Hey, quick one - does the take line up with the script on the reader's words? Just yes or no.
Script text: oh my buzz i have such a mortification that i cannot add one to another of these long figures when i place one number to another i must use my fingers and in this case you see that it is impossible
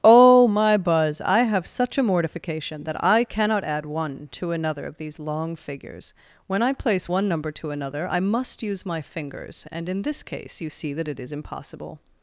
yes